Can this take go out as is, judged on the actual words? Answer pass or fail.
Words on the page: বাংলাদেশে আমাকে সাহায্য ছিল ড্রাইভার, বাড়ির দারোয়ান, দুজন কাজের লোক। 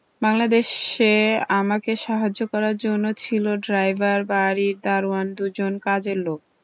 fail